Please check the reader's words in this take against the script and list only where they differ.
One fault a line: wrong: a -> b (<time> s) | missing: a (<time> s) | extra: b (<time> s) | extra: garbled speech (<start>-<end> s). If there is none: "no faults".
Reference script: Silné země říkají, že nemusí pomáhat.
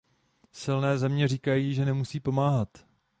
no faults